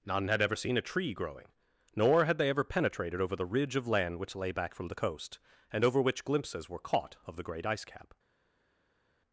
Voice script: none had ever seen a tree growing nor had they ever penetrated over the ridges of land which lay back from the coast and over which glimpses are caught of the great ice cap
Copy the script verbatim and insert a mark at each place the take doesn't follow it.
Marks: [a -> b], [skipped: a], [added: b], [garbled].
none had ever seen a tree growing nor had they ever penetrated over the [ridges -> ridge] of land which lay back from the coast and over which glimpses [are -> were] caught of the great ice cap